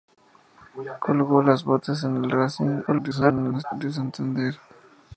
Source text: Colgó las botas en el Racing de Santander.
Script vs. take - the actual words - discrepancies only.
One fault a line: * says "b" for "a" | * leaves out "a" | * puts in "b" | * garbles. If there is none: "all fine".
* garbles